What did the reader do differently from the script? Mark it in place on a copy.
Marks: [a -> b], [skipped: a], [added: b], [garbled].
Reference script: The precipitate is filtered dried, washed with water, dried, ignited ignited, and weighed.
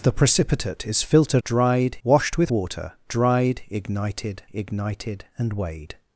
The precipitate is filtered dried, washed with water, dried, ignited ignited, and weighed.